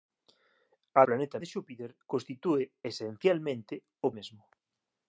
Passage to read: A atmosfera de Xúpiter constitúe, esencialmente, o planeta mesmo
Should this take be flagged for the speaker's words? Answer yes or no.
yes